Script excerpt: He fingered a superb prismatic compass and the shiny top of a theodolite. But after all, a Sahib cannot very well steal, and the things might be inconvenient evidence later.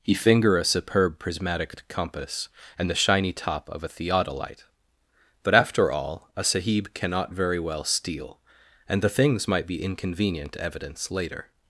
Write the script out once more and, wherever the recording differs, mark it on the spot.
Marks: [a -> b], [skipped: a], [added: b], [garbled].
He [fingered -> finger] a superb prismatic compass and the shiny top of a theodolite. But after all, a Sahib cannot very well steal, and the things might be inconvenient evidence later.